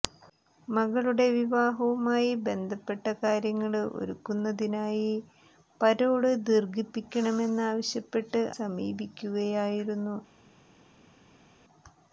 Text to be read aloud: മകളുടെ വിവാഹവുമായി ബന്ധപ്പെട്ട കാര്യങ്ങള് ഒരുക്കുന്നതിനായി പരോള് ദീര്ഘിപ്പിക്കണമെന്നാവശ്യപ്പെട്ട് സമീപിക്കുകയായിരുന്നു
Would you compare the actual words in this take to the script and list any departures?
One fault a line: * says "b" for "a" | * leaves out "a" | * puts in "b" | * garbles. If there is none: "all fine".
all fine